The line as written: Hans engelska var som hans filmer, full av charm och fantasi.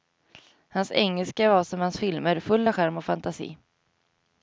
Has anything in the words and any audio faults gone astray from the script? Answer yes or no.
no